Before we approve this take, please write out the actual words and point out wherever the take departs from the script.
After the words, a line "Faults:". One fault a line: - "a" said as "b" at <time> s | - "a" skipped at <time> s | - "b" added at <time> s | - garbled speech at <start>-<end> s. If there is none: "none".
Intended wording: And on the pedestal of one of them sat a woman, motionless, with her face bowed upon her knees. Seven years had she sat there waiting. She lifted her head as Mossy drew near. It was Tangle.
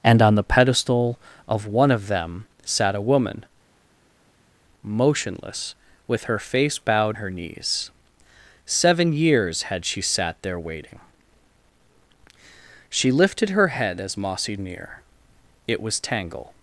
And on the pedestal of one of them sat a woman, motionless, with her face bowed her knees. Seven years had she sat there waiting. She lifted her head as Mossy near. It was Tangle.
Faults:
- "upon" skipped at 7.2 s
- "drew" skipped at 14.6 s